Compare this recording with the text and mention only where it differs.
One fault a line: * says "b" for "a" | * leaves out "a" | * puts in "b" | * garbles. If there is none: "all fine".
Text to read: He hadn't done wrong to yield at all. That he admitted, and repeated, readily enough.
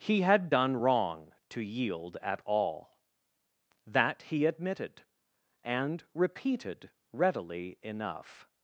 * says "had" for "hadn't"